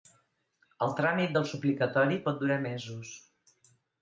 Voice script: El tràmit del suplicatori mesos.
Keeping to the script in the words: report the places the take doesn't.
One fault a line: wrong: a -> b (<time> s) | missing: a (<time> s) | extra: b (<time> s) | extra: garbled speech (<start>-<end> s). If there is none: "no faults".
extra: pot durar (2.3 s)